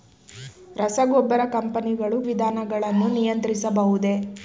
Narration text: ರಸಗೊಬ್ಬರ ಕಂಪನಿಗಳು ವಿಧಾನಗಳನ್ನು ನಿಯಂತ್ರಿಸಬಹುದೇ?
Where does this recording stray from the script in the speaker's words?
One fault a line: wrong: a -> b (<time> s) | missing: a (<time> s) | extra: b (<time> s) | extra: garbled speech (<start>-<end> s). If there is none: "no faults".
no faults